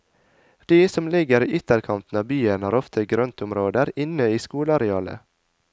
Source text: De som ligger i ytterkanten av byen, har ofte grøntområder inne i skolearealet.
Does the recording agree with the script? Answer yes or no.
yes